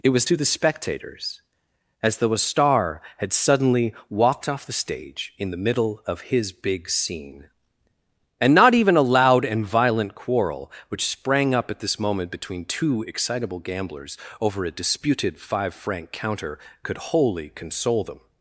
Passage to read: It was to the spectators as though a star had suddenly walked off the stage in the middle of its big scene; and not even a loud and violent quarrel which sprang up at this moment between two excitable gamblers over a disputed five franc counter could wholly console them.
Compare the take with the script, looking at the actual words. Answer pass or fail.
fail